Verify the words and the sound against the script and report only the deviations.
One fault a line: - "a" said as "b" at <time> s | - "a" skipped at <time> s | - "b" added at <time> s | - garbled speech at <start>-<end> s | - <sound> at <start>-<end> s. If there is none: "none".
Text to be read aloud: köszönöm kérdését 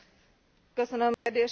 - dropout at 1.1-1.3 s